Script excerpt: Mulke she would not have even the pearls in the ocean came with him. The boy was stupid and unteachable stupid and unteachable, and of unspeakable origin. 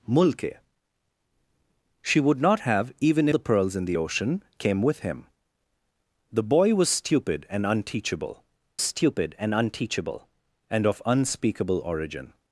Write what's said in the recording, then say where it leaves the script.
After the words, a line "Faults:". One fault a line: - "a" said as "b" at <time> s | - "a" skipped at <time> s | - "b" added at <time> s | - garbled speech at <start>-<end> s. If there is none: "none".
Mulke she would not have even the pearls in the ocean came with him. The boy was stupid and unteachable stupid and unteachable, and of unspeakable origin.
Faults:
none